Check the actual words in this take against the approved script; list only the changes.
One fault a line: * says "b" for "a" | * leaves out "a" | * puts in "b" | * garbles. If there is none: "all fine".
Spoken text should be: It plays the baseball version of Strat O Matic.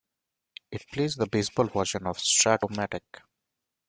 all fine